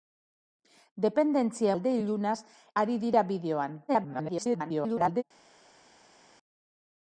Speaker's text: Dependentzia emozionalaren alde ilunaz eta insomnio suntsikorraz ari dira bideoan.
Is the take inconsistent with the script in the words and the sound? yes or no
yes